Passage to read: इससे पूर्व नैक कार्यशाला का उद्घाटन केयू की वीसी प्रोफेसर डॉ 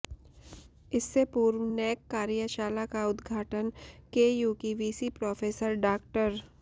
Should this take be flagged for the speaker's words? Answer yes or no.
no